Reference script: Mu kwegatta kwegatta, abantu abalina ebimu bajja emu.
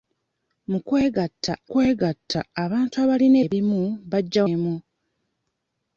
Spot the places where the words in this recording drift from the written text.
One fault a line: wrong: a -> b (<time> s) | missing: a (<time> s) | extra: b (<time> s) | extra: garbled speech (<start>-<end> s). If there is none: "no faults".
no faults